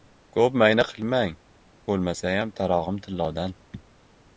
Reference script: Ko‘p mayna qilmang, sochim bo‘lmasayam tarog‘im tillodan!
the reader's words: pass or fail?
fail